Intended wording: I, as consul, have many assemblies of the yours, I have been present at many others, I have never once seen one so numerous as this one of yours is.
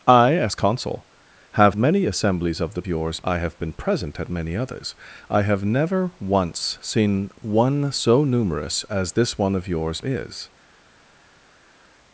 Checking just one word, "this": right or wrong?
right